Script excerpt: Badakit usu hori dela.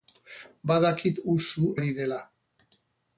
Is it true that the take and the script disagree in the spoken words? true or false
false